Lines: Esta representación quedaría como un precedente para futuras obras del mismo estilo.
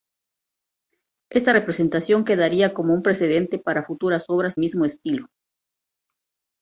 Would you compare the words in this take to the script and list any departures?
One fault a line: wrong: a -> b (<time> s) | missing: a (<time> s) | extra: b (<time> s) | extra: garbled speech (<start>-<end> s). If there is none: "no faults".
missing: del (4.6 s)